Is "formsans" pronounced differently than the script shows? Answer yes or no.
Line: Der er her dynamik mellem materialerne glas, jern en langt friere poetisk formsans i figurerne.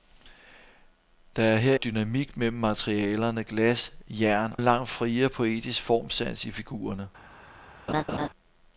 no